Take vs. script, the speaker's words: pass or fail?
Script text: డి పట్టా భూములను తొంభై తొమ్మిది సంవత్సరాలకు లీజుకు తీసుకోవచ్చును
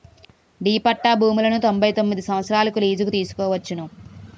pass